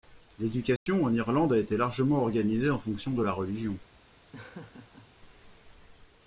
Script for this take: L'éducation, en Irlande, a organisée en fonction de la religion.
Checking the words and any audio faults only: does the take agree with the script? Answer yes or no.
no